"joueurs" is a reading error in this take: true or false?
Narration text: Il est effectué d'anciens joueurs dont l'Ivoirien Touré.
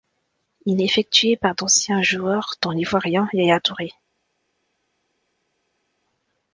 false